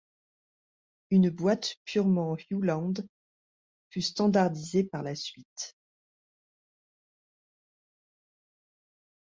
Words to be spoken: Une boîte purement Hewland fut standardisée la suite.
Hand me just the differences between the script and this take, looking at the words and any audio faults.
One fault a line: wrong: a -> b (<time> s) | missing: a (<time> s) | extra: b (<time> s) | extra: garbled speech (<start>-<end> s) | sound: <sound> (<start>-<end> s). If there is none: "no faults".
extra: par (4.8 s)